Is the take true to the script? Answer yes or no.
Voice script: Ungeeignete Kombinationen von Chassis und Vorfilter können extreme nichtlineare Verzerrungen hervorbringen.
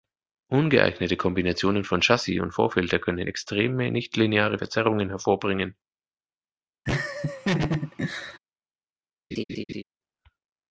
yes